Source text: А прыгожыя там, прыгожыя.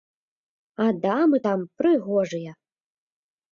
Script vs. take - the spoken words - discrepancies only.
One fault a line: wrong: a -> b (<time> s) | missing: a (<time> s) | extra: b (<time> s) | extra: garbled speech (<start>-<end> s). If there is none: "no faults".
wrong: прыгожыя -> дамы (1.1 s)